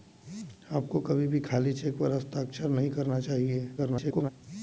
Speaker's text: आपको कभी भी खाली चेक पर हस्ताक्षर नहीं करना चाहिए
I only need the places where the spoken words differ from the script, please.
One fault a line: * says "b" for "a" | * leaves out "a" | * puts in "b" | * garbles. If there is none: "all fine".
* garbles